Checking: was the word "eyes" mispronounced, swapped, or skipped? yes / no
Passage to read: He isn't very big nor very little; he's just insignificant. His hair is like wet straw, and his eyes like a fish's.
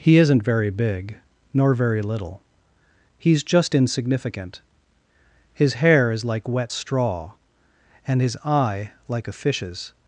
yes